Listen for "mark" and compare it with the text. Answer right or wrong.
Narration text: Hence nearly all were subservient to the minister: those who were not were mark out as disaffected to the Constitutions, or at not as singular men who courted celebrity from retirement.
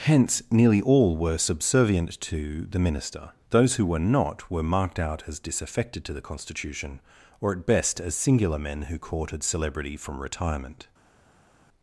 wrong